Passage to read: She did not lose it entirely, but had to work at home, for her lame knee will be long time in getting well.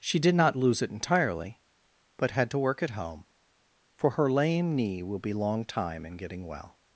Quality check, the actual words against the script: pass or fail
pass